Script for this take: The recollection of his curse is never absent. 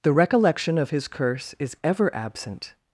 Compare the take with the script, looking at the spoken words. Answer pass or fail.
fail